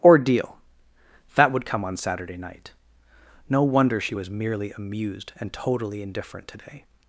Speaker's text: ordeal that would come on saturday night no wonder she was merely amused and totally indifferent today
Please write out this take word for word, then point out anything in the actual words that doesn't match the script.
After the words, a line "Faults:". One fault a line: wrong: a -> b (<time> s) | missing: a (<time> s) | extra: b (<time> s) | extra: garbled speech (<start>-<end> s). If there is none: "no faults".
ordeal that would come on saturday night no wonder she was merely amused and totally indifferent today
Faults:
no faults